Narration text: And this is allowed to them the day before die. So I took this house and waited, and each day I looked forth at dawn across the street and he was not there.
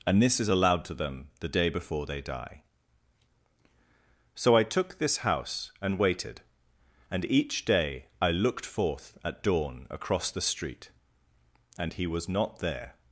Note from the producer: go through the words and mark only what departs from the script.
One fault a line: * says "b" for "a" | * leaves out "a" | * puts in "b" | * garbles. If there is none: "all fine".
* puts in "they"